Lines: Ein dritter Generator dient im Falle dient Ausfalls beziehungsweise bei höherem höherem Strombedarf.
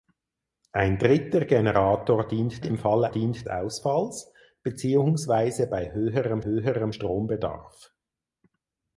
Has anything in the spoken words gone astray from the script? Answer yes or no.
no